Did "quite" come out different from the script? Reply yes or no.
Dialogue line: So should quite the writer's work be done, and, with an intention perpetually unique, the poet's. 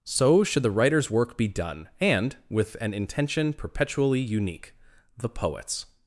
yes